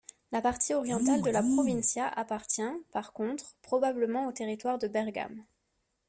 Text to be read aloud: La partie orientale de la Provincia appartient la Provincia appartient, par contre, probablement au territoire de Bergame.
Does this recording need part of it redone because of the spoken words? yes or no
yes